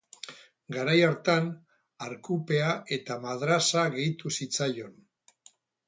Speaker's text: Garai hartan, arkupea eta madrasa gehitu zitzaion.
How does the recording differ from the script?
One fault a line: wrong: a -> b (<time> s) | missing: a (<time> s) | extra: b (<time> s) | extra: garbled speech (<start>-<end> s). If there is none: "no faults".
no faults